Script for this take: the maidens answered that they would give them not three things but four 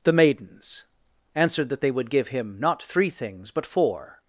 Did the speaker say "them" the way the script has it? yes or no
no